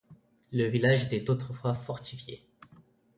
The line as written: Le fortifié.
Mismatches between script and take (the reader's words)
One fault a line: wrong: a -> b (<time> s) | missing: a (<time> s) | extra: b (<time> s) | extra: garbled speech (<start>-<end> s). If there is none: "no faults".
extra: village était autrefois (0.7 s)